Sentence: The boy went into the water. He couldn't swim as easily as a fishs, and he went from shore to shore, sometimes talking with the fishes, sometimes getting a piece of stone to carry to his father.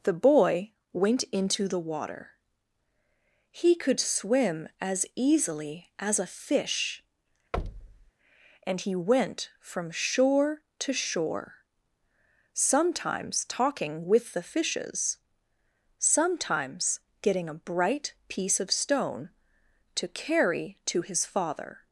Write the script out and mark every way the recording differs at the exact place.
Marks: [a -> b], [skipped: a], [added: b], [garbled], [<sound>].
The boy went into the water. He [couldn't -> could] swim as easily as a [fishs, -> fish] [thud] and he went from shore to shore, sometimes talking with the fishes, sometimes getting a [added: bright] piece of stone to carry to his father.